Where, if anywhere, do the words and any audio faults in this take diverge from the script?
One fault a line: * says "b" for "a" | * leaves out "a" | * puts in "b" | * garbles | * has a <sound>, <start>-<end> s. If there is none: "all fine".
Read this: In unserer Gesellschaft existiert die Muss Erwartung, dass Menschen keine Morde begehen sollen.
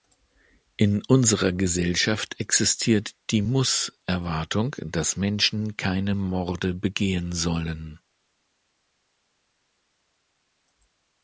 all fine